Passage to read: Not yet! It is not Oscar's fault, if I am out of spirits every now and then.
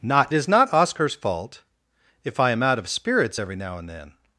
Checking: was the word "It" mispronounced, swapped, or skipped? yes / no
yes